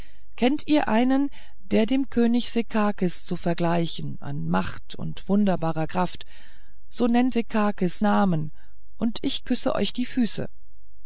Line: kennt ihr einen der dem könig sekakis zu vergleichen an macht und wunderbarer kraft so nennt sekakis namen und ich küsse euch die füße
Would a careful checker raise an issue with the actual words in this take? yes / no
no